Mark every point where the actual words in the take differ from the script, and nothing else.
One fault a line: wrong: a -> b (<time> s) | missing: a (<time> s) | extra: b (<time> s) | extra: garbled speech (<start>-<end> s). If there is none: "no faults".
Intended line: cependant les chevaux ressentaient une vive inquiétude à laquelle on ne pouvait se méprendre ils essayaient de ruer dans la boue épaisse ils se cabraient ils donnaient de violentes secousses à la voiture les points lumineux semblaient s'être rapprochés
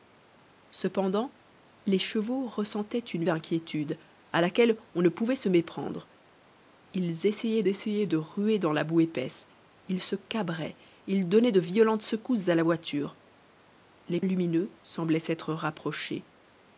missing: vive (3.2 s)
extra: essayaient (7.7 s)
missing: points (14.2 s)